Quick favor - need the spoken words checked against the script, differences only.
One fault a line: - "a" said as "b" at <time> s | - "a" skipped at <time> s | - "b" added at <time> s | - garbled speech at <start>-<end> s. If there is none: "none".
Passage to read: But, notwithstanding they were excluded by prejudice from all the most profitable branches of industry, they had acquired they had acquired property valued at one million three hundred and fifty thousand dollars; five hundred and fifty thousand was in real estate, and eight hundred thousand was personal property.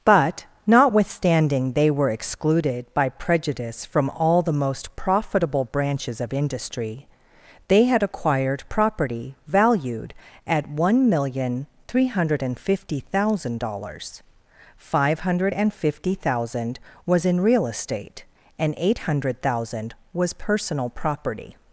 - "they had acquired" skipped at 8.6 s